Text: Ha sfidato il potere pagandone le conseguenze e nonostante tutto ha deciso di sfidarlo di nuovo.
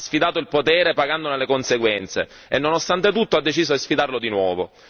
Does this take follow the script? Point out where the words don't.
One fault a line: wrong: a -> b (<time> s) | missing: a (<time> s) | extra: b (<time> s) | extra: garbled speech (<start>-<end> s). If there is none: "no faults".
no faults